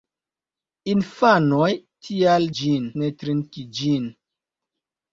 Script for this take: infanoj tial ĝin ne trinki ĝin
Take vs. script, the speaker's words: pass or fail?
pass